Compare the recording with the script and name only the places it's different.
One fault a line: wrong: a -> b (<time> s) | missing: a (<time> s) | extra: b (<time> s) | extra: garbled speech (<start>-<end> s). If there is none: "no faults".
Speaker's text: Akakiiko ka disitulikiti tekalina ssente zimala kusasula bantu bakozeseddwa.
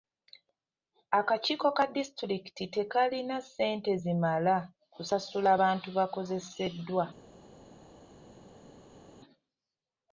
no faults